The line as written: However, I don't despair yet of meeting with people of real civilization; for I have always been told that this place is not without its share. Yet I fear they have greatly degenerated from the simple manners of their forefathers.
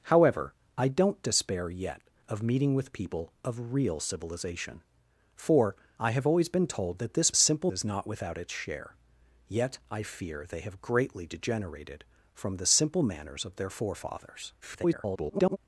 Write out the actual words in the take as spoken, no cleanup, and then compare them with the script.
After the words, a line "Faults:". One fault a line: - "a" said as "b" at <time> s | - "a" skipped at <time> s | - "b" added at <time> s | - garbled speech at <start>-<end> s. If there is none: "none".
However, I don't despair yet of meeting with people of real civilization; for I have always been told that this simple is not without its share. Yet I fear they have greatly degenerated from the simple manners of their forefathers. [garbled]
Faults:
- "place" said as "simple" at 7.3 s
- garbled speech at 14.6-15.6 s